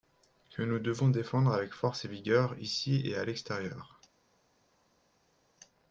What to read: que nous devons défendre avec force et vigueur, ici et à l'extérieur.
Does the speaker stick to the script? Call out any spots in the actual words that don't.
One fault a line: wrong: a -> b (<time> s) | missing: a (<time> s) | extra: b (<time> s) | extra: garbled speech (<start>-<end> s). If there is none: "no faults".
no faults